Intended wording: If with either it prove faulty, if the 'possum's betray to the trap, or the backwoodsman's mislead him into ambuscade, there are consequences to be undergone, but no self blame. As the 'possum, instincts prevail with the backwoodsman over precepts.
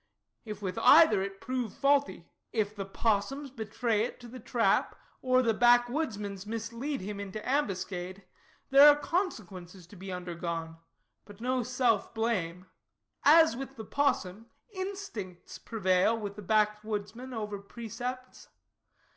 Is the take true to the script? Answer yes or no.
no